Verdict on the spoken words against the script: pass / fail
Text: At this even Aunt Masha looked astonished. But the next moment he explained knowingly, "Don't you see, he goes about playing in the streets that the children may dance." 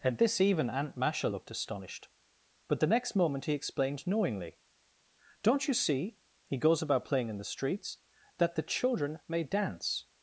pass